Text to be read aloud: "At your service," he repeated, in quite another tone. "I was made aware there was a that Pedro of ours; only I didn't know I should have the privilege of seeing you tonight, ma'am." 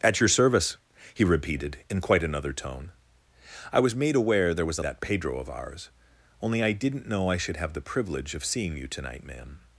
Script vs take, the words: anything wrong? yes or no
no